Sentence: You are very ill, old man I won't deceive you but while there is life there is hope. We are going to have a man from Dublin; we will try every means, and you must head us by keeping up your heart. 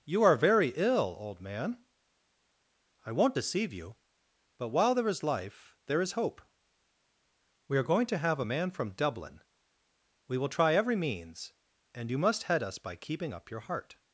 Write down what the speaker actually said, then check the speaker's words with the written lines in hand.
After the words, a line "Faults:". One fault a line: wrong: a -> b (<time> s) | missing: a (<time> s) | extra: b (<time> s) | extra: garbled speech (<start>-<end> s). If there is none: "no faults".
You are very ill, old man I won't deceive you but while there is life there is hope. We are going to have a man from Dublin; we will try every means, and you must head us by keeping up your heart.
Faults:
no faults